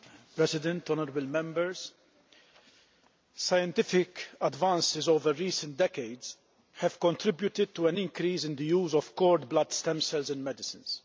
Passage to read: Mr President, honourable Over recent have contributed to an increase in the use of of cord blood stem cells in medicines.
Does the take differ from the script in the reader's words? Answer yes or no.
yes